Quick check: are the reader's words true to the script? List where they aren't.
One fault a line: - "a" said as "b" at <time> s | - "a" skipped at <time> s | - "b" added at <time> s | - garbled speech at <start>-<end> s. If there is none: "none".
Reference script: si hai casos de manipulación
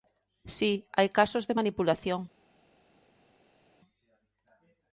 none